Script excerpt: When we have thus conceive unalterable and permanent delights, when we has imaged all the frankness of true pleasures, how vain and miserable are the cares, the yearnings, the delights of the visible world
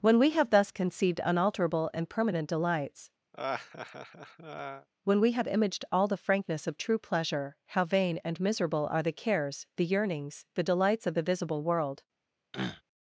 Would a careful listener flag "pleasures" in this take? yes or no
yes